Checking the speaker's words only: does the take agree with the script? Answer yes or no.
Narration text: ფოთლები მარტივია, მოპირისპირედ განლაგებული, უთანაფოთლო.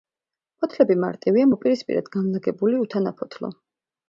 yes